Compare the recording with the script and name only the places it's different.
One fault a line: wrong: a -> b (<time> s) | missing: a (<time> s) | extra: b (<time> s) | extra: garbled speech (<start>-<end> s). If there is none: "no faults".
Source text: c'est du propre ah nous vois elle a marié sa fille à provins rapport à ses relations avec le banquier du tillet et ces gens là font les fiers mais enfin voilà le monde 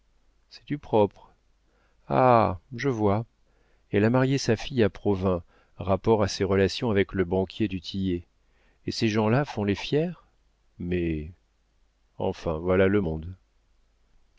wrong: nous -> je (2.8 s)